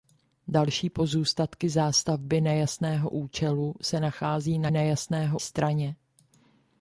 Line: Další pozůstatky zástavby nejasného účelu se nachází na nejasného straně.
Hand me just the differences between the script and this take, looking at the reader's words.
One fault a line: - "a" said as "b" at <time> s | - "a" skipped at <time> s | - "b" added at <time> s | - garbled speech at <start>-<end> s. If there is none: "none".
none